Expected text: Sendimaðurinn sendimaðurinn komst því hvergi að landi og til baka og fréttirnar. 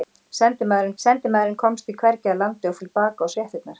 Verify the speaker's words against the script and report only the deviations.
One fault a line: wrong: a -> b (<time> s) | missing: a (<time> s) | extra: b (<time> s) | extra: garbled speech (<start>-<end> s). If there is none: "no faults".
no faults